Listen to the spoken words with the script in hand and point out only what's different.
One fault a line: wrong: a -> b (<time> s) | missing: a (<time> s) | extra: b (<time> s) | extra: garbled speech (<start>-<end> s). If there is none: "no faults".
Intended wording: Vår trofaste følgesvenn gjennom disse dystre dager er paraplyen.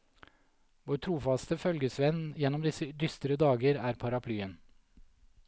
no faults